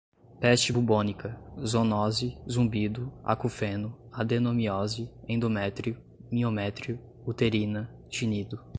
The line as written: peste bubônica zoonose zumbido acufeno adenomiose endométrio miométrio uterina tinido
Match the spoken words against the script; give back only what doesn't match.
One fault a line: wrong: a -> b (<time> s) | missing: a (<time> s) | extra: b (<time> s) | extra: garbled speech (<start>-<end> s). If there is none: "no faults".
no faults